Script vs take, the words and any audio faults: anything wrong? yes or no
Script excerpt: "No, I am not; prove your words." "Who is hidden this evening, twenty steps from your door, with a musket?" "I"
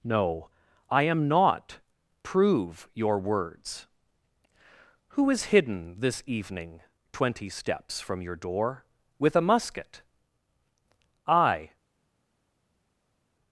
no